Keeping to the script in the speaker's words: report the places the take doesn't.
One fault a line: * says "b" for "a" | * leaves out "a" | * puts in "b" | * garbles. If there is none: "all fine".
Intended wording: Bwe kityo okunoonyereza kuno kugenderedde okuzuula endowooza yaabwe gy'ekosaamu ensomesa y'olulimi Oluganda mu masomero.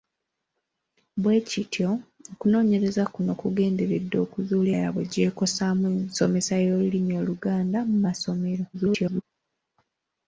* leaves out "endowooza"
* garbles